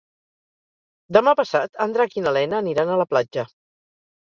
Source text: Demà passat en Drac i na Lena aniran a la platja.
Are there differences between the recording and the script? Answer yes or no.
no